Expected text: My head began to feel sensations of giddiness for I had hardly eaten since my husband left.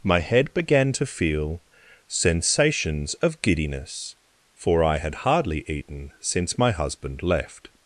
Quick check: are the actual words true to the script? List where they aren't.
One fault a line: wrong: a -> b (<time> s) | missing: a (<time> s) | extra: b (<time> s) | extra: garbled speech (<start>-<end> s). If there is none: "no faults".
no faults